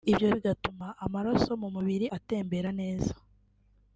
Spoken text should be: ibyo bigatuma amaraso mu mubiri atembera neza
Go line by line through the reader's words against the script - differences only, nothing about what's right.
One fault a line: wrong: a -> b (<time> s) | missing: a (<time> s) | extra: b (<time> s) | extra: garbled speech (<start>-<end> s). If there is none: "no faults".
no faults